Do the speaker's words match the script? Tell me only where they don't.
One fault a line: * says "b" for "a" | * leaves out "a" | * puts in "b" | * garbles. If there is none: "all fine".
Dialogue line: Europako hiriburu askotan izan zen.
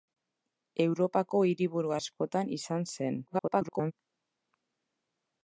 * garbles